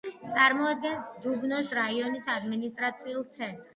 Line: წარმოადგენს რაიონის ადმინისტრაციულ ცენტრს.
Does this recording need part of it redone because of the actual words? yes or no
yes